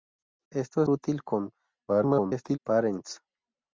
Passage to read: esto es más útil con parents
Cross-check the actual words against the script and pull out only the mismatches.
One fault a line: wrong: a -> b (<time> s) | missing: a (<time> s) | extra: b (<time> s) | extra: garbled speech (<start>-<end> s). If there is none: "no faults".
missing: más (0.9 s)
extra: garbled speech (1.9-2.6 s)